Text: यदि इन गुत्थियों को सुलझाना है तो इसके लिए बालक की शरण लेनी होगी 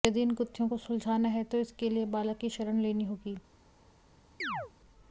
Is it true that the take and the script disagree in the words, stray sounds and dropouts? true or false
true